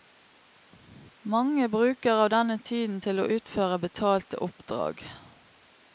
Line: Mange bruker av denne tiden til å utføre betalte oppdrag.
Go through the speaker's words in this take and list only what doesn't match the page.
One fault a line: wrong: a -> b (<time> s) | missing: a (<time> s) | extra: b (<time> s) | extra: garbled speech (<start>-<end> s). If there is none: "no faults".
no faults